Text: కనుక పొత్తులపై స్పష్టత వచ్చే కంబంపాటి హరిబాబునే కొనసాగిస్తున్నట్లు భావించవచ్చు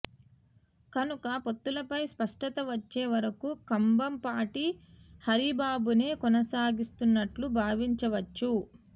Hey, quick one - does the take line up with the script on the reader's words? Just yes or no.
no